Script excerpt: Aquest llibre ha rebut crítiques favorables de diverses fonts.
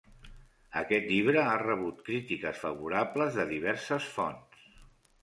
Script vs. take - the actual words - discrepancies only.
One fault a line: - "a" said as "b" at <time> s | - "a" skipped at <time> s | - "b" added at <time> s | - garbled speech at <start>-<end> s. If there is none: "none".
none